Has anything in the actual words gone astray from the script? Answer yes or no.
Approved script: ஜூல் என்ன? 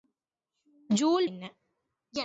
no